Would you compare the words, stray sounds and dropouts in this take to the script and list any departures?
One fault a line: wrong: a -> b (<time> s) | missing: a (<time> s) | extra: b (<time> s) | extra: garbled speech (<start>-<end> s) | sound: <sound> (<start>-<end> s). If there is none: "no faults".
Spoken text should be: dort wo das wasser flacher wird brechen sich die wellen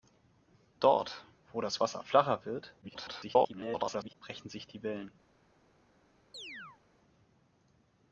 extra: garbled speech (2.8-4.1 s)
sound: chirp (6.3-6.8 s)